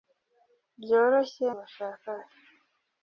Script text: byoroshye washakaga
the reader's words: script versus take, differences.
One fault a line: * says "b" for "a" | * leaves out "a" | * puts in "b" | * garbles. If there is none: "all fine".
all fine